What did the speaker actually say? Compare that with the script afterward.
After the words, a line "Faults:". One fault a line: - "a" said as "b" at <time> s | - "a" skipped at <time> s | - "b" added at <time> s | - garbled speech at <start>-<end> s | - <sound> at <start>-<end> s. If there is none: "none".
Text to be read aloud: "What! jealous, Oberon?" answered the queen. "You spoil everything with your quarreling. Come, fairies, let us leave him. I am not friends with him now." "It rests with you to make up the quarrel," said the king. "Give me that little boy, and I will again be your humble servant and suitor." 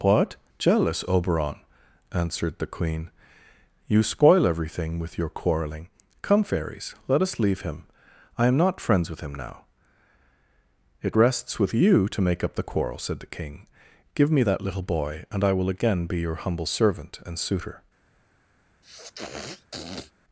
"What! jealous, Oberon?" answered the queen. "You spoil everything with your quarreling. Come, fairies, let us leave him. I am not friends with him now." "It rests with you to make up the quarrel," said the king. "Give me that little boy, and I will again be your humble servant and suitor."
Faults:
- sniff at 18.8-20.1 s